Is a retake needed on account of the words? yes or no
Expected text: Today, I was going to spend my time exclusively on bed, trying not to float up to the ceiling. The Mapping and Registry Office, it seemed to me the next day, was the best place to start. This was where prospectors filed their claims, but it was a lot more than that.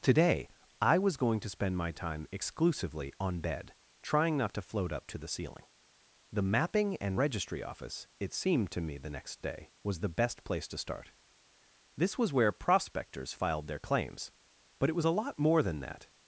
no